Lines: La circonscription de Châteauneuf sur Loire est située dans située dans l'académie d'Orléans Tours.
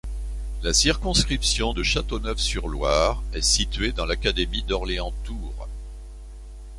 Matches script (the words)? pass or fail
fail